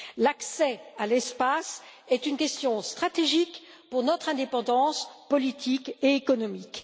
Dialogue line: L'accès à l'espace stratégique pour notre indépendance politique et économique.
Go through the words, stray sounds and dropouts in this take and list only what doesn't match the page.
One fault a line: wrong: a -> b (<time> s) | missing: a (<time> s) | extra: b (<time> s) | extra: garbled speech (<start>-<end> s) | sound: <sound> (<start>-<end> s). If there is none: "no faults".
extra: est une question (2.1 s)